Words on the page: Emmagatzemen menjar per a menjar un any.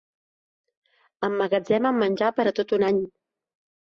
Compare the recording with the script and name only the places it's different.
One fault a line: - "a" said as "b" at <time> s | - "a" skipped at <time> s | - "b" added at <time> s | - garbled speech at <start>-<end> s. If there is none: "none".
- "menjar" said as "tot" at 2.6 s